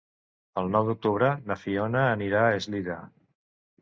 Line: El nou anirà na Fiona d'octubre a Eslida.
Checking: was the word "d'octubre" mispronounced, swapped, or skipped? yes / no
yes